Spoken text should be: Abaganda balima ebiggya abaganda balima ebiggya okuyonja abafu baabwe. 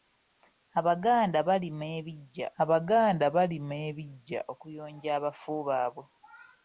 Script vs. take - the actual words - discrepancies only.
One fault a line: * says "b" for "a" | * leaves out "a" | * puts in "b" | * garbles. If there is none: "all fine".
all fine